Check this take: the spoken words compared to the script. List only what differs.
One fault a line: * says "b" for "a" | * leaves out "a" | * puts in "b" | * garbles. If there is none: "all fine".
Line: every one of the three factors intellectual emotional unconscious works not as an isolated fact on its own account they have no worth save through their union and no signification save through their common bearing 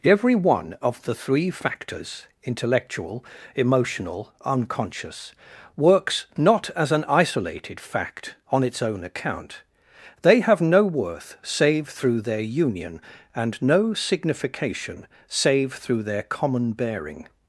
all fine